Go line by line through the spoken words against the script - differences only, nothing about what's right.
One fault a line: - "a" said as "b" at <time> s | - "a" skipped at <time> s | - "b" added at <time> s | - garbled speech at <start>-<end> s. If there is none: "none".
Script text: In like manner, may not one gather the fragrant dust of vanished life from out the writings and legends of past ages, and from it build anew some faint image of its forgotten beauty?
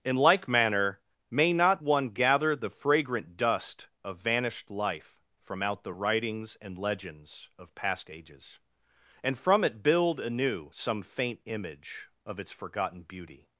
none